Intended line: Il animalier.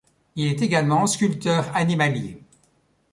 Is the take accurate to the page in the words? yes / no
no